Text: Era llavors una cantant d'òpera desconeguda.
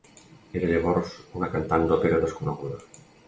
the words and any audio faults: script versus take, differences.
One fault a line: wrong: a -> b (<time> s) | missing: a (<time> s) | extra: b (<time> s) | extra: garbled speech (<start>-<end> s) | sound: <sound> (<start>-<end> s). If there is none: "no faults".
no faults